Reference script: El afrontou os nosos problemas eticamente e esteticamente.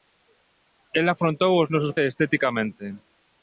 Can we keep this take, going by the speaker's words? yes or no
no